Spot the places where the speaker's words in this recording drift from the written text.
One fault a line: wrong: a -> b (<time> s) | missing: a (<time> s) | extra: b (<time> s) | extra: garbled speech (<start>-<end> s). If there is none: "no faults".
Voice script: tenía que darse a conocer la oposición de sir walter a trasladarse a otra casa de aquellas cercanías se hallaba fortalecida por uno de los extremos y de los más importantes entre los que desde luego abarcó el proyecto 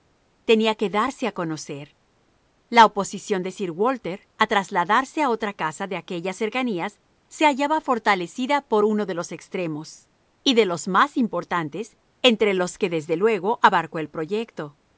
no faults